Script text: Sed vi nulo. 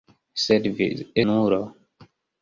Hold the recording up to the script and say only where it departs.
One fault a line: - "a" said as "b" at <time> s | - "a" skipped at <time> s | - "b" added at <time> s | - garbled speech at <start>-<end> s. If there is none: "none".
none